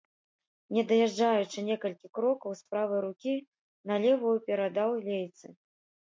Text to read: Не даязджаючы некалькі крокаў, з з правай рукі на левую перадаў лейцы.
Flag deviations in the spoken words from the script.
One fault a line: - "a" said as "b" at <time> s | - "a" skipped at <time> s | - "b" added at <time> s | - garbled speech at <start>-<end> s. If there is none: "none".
none